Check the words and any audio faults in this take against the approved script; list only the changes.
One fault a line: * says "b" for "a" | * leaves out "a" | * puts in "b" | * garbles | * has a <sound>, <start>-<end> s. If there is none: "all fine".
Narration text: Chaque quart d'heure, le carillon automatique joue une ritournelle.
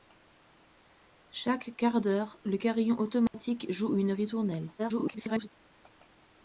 * has a dropout, 3.3-3.3 s
* garbles